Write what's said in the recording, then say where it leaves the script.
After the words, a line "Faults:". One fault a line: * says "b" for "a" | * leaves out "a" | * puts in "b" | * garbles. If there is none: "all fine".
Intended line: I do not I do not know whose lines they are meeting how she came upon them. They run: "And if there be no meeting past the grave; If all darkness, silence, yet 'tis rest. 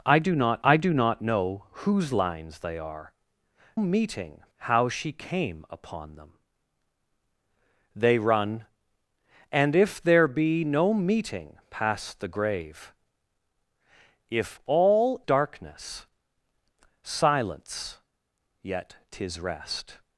I do not I do not know whose lines they are meeting how she came upon them. They run: "And if there be no meeting past the grave; If all darkness, silence, yet 'tis rest.
Faults:
all fine